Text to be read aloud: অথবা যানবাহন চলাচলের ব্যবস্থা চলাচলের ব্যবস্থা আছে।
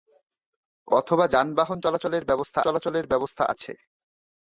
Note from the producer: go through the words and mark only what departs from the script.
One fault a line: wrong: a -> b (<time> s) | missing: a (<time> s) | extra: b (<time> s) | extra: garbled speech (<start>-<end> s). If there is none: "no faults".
no faults